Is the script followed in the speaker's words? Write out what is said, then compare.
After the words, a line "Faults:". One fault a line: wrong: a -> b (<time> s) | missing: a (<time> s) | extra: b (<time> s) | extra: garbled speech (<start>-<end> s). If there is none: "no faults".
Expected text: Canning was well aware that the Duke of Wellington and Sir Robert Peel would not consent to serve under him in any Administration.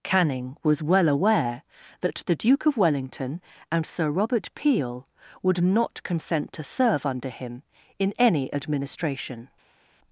Canning was well aware that the Duke of Wellington and Sir Robert Peel would not consent to serve under him in any Administration.
Faults:
no faults